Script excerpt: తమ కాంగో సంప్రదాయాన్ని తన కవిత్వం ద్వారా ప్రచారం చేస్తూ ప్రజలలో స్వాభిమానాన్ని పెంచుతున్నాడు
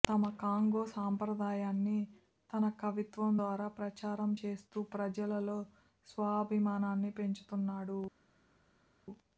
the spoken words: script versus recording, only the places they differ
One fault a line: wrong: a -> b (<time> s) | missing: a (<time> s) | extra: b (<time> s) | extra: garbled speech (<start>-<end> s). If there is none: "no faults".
no faults